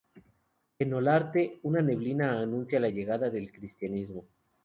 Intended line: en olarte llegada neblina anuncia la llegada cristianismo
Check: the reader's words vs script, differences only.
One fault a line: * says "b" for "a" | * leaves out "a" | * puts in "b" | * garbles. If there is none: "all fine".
* says "una" for "llegada"
* puts in "del"